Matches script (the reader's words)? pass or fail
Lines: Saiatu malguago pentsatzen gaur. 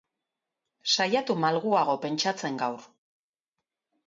pass